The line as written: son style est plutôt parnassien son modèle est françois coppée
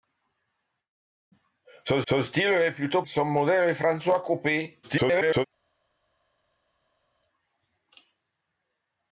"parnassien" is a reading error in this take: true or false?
true